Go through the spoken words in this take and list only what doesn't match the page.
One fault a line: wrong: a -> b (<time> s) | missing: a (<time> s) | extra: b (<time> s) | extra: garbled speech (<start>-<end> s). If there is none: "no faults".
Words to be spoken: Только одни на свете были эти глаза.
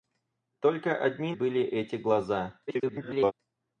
missing: на свете (1.3 s)
extra: garbled speech (2.7-3.3 s)